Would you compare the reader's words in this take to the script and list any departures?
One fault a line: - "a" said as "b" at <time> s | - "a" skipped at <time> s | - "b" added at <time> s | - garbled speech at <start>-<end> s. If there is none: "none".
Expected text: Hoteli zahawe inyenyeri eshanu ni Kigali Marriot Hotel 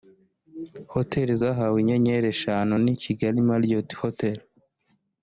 none